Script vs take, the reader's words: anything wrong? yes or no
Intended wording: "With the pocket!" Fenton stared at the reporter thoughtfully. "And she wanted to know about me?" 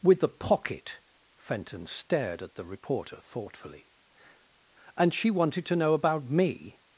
no